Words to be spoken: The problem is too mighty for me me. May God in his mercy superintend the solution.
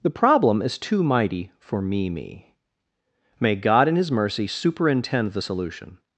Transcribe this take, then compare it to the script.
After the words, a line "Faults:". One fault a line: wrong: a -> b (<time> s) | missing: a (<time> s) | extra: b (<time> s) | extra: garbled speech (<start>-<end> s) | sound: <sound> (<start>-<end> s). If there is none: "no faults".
The problem is too mighty for me me. May God in his mercy superintend the solution.
Faults:
no faults